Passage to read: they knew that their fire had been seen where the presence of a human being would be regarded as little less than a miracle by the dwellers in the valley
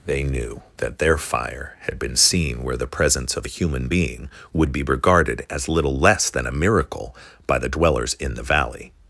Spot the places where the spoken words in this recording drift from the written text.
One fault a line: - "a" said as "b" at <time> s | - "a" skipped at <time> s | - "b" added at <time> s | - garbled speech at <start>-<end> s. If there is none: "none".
none